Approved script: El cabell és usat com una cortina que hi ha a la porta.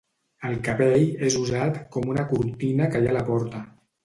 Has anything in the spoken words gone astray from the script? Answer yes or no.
no